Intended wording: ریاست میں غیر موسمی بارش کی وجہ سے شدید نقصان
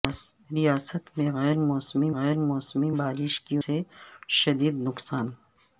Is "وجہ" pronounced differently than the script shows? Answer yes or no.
yes